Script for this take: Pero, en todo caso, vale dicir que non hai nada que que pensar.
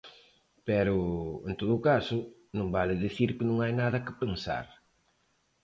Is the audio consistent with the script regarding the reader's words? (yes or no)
no